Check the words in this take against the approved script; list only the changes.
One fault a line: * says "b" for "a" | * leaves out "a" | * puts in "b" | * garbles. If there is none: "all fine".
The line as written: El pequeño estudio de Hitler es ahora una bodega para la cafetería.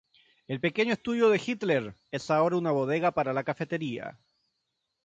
all fine